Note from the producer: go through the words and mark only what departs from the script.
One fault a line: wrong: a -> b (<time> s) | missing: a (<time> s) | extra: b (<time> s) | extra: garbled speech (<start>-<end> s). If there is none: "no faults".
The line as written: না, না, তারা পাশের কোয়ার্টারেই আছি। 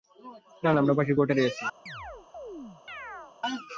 wrong: তারা -> আমরা (0.8 s)